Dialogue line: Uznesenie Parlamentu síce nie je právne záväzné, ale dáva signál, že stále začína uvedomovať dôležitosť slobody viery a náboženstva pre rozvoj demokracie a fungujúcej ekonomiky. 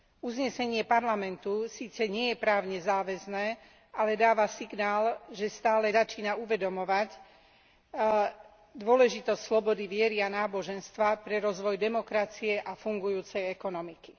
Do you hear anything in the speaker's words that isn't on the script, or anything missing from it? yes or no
no